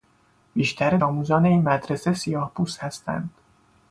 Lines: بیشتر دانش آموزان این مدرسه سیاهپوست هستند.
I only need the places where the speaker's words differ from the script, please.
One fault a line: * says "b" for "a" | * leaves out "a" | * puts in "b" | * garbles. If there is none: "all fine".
* leaves out "دانش"